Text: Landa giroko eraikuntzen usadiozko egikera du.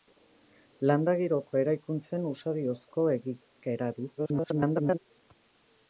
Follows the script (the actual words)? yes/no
no